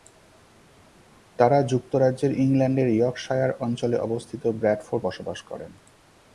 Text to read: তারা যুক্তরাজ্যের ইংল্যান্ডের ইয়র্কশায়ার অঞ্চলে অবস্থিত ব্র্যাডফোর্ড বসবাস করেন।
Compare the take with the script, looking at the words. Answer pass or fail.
pass